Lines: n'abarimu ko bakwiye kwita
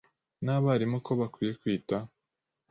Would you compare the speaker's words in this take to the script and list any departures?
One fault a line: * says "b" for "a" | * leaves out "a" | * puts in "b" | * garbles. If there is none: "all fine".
all fine